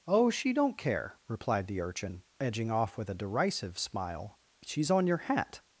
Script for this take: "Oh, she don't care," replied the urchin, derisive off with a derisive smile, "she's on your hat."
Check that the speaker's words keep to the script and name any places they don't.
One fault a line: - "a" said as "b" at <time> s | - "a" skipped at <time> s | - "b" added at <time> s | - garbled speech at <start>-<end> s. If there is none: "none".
- "derisive" said as "edging" at 2.4 s